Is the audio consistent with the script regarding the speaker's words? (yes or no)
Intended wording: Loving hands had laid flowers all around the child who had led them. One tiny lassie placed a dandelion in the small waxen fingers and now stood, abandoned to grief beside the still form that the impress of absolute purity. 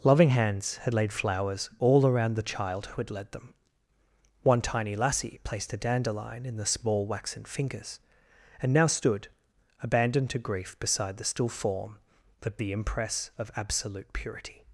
yes